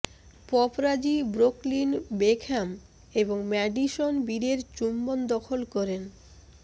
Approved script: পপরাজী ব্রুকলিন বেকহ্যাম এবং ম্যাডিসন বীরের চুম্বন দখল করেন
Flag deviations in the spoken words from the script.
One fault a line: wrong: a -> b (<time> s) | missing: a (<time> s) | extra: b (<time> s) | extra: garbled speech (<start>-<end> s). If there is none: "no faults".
no faults